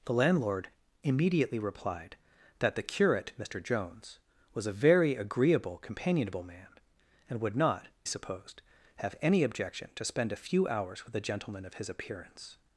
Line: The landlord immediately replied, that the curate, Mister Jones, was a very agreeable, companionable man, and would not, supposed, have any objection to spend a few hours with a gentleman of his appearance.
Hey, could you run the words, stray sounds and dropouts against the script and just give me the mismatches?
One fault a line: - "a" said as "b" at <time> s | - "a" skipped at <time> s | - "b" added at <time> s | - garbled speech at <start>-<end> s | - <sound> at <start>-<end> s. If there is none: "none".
none